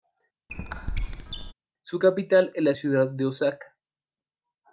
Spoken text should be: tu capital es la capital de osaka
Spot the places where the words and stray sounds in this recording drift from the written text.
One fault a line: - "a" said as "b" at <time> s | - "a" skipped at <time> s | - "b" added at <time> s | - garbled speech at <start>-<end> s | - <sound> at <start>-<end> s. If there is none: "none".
- squeak at 0.5-1.5 s
- "tu" said as "su" at 1.8 s
- "capital" said as "ciudad" at 2.7 s